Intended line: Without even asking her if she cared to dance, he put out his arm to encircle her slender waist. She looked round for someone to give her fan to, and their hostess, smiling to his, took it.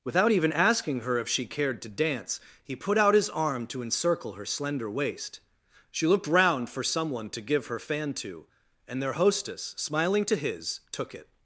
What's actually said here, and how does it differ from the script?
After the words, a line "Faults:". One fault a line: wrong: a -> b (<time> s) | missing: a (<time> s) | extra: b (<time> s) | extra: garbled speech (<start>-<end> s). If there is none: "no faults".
Without even asking her if she cared to dance, he put out his arm to encircle her slender waist. She looked round for someone to give her fan to, and their hostess, smiling to his, took it.
Faults:
no faults